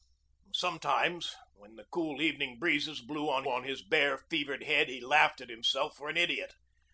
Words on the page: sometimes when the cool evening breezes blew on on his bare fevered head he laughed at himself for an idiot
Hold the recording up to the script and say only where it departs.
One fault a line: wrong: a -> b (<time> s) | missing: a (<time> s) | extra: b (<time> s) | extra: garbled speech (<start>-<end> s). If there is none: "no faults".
no faults